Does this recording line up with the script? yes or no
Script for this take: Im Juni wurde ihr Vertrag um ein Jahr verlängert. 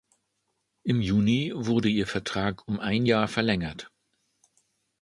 yes